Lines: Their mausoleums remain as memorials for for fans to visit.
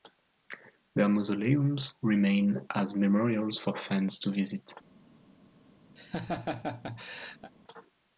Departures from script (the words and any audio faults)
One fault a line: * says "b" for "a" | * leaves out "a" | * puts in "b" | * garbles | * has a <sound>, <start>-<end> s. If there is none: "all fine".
* leaves out "for"
* has a laugh, 6.0-7.5 s